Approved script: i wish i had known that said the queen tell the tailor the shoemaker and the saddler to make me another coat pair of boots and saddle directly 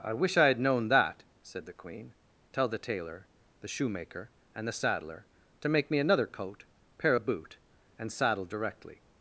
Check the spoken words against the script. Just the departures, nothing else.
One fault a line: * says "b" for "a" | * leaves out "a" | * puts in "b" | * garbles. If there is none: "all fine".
* says "boot" for "boots"